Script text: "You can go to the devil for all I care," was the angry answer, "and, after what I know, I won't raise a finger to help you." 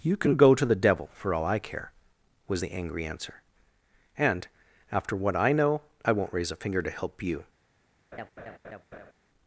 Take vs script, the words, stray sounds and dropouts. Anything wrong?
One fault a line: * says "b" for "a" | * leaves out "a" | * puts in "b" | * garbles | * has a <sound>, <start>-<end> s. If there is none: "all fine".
* has a laugh, 8.1-9.1 s